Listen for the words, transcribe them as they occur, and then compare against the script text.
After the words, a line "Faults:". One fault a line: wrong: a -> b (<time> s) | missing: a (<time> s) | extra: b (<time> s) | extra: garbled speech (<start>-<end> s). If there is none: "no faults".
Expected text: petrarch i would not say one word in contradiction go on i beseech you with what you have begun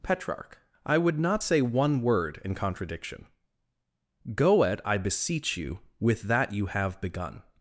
petrarch i would not say one word in contradiction go at i beseech you with that you have begun
Faults:
wrong: on -> at (4.6 s)
wrong: what -> that (6.2 s)